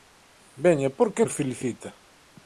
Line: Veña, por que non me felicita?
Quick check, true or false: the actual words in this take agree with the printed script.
false